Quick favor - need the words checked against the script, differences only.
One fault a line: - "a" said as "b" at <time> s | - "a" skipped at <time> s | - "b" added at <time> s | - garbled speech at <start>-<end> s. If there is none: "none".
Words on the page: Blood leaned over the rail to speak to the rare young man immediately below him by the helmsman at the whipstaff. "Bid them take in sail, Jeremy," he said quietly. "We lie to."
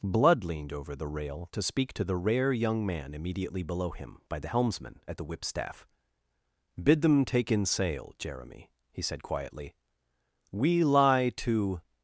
none